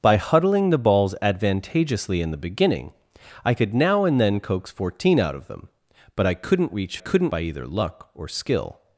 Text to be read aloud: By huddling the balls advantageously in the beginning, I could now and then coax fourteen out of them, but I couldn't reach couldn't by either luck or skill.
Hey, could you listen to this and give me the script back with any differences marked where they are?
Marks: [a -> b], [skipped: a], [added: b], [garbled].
By huddling the balls advantageously in the beginning, I could now and then coax fourteen out of them, but I couldn't reach couldn't by either luck or skill.